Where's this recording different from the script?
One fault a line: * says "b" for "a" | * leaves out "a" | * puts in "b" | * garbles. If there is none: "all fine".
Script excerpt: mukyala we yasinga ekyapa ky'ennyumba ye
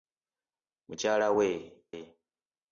* leaves out "yasinga ekyapa ky'ennyumba"